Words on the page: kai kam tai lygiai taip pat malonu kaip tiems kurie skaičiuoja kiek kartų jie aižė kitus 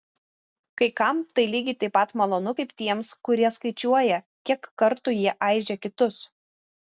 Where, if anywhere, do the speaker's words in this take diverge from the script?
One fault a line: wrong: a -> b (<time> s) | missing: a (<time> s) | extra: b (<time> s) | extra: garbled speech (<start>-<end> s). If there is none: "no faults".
no faults